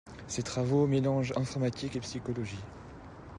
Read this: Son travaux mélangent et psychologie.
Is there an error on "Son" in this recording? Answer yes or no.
yes